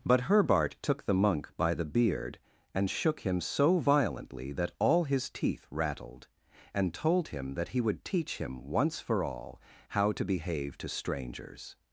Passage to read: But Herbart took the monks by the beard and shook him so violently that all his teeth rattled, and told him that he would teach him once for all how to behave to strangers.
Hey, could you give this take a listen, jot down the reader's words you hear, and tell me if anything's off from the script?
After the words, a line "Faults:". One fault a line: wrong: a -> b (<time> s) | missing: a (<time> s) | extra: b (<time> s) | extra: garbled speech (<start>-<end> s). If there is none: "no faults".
But Herbart took the monk by the beard and shook him so violently that all his teeth rattled, and told him that he would teach him once for all how to behave to strangers.
Faults:
wrong: monks -> monk (1.1 s)